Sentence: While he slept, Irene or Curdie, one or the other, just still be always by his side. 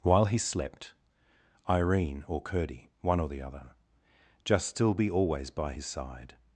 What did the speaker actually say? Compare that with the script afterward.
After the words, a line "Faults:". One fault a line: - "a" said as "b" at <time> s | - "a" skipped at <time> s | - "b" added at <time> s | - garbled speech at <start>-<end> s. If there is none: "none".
While he slept, Irene or Curdie, one or the other, just still be always by his side.
Faults:
none